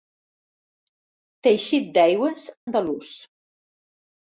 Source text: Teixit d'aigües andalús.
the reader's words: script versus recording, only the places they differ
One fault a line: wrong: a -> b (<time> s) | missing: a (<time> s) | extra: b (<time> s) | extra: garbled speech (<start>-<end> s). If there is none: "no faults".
no faults